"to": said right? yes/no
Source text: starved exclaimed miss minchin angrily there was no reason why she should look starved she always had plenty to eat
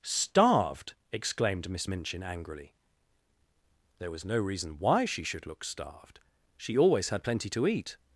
yes